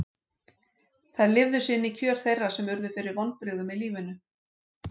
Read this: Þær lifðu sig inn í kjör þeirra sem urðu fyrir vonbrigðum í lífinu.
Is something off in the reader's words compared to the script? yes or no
no